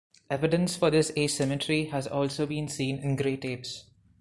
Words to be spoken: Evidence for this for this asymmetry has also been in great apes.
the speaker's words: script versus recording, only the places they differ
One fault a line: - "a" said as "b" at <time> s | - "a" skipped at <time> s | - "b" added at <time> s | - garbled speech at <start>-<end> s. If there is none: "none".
- "for this" skipped at 1.1 s
- "seen" added at 2.7 s